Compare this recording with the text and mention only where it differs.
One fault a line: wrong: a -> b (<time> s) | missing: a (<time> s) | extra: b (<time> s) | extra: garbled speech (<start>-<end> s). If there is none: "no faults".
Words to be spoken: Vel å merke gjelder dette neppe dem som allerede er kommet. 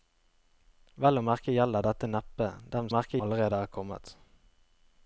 wrong: som -> merke (2.9 s)